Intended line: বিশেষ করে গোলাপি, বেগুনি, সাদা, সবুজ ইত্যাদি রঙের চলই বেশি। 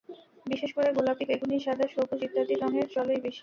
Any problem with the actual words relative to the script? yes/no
no